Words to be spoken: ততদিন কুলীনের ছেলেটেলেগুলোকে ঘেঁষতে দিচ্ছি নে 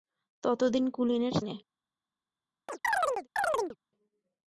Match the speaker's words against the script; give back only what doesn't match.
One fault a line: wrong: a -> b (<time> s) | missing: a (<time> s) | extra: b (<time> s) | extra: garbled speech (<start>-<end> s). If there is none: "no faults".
missing: ছেলেটেলেগুলোকে ঘেঁষতে দিচ্ছি (1.4 s)